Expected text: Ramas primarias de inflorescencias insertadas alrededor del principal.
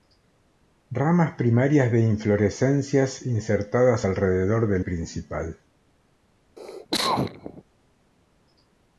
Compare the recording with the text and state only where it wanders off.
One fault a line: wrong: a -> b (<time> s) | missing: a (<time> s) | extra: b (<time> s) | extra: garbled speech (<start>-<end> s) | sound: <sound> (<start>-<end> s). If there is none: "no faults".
sound: cough (6.6-7.6 s)